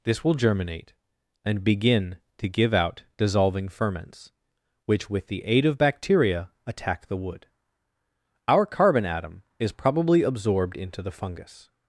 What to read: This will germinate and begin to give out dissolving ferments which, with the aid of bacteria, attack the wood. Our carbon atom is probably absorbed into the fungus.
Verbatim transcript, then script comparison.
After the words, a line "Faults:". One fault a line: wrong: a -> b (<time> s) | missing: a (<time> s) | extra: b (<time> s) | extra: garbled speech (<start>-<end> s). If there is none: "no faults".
This will germinate and begin to give out dissolving ferments which, with the aid of bacteria, attack the wood. Our carbon atom is probably absorbed into the fungus.
Faults:
no faults